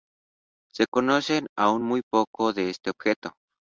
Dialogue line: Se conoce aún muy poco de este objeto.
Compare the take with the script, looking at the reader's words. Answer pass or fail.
pass